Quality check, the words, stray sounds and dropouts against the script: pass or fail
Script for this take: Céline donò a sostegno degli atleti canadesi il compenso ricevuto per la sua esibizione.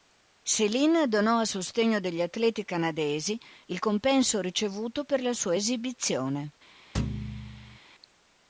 fail